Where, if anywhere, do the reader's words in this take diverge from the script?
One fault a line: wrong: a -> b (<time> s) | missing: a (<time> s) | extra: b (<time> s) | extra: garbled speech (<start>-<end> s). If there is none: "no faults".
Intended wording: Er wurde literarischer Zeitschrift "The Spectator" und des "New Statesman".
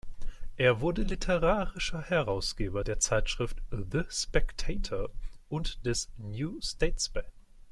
extra: Herausgeber der (2.0 s)